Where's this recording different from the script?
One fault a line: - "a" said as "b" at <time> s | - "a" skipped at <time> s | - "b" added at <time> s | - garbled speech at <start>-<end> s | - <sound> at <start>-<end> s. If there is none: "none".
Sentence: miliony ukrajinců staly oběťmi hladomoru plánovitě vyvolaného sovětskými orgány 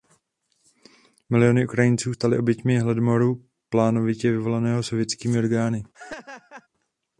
- laugh at 5.9-6.7 s